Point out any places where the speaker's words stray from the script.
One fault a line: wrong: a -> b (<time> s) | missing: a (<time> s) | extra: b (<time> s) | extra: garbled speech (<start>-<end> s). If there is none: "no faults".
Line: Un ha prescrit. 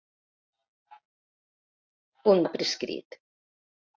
no faults